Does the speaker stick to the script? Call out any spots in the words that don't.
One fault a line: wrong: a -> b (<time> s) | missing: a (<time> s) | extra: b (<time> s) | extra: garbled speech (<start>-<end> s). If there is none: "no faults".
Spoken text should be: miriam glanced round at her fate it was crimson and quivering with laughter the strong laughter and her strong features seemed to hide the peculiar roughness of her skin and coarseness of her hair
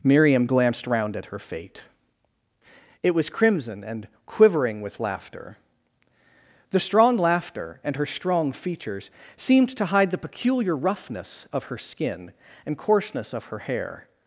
no faults